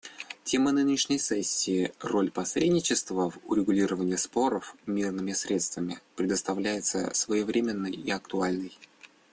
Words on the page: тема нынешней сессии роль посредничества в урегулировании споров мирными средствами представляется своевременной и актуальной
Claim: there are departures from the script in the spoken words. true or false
false